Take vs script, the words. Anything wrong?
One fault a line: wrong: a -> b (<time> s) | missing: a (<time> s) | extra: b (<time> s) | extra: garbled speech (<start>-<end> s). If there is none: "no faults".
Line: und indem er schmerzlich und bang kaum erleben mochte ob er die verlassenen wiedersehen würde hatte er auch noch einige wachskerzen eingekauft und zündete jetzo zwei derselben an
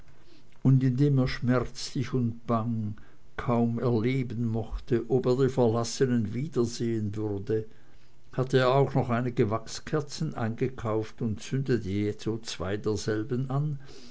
no faults